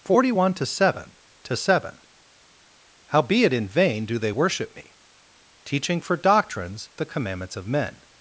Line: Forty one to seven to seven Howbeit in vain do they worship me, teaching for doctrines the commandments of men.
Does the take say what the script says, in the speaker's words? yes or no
yes